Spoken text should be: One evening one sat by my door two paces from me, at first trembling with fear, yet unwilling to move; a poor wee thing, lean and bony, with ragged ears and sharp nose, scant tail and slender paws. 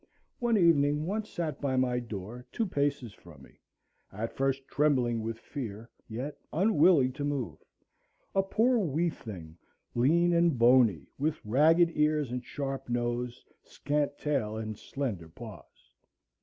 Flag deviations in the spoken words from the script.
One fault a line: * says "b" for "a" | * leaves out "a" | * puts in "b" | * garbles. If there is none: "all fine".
all fine